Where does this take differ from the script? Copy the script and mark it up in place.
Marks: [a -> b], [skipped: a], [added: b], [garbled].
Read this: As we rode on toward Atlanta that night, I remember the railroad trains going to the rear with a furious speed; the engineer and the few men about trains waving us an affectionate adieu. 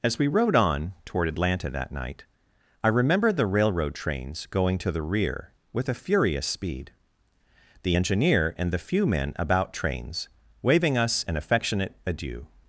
As we rode on toward Atlanta that night, I remember the railroad trains going to the rear with a furious speed; the engineer and the few men about trains waving us an affectionate adieu.